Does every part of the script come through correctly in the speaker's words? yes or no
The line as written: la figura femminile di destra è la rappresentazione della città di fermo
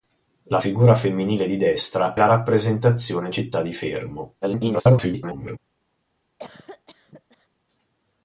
no